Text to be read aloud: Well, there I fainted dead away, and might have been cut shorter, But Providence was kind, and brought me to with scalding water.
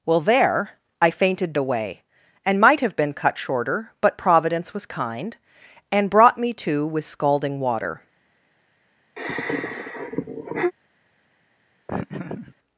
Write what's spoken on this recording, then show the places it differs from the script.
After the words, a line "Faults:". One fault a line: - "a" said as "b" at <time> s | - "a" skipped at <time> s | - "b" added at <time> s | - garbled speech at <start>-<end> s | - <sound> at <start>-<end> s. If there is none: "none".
Well, there I fainted away, and might have been cut shorter, But Providence was kind, and brought me to with scalding water.
Faults:
- "dead" skipped at 1.5 s
- sigh at 9.2-10.7 s
- laugh at 11.9-12.5 s